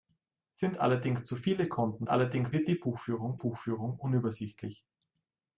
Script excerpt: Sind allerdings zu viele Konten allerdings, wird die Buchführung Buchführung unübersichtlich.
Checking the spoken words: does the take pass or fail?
pass